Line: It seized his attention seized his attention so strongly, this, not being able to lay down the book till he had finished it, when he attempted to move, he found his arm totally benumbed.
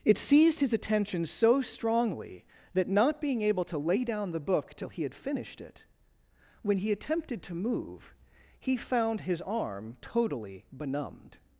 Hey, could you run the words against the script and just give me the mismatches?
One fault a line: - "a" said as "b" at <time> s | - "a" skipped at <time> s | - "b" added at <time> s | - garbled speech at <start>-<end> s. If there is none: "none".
- "seized his attention" skipped at 1.2 s
- "this" said as "that" at 2.7 s